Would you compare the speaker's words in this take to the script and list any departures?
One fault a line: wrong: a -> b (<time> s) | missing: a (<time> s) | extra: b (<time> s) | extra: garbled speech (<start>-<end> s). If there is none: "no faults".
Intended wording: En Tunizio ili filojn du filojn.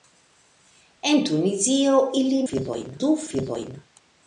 no faults